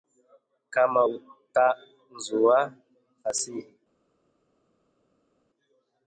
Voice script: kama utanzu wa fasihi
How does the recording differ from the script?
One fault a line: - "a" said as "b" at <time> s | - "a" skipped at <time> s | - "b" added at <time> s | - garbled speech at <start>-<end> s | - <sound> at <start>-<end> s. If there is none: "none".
none